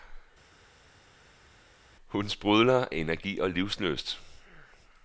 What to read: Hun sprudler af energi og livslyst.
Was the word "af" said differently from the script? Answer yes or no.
yes